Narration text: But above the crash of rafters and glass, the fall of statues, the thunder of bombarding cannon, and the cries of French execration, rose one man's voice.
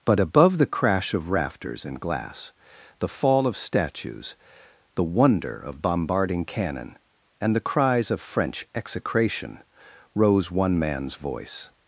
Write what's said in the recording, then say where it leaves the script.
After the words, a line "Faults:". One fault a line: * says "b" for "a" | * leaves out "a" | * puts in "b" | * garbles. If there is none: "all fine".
But above the crash of rafters and glass, the fall of statues, the wonder of bombarding cannon, and the cries of French execration, rose one man's voice.
Faults:
* says "wonder" for "thunder"